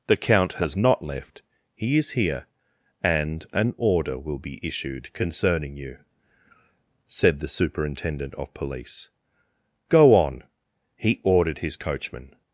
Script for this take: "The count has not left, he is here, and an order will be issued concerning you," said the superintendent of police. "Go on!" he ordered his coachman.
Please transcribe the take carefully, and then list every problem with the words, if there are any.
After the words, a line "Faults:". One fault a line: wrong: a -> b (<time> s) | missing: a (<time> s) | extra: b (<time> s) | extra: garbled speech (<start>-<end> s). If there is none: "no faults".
"The count has not left, he is here, and an order will be issued concerning you," said the superintendent of police. "Go on!" he ordered his coachman.
Faults:
no faults